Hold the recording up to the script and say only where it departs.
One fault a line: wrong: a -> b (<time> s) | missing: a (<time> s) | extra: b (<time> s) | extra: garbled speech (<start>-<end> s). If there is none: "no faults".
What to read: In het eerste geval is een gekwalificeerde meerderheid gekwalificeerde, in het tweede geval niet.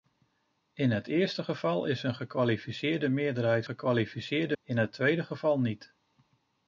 no faults